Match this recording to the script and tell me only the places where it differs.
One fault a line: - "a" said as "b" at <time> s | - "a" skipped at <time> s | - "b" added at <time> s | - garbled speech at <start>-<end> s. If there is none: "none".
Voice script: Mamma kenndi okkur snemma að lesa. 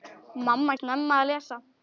- "kenndi okkur" skipped at 0.8 s